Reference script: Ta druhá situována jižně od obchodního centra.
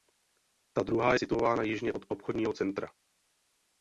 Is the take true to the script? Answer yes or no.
yes